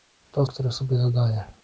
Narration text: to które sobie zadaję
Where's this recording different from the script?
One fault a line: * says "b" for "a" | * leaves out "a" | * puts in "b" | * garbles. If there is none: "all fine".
all fine